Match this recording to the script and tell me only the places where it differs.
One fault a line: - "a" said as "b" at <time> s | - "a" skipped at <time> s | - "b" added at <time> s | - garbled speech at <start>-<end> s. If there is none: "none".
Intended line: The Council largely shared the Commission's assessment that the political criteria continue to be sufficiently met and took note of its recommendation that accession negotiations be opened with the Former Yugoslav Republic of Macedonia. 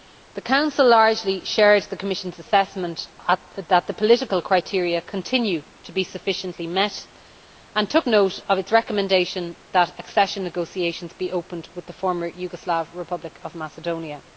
none